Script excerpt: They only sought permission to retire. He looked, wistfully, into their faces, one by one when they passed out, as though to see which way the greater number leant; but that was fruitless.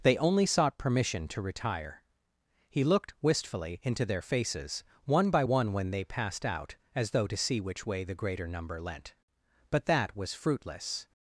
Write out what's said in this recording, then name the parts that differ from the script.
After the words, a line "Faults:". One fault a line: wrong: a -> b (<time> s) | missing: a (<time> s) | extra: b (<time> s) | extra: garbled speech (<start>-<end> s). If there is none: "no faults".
They only sought permission to retire. He looked, wistfully, into their faces, one by one when they passed out, as though to see which way the greater number leant; but that was fruitless.
Faults:
no faults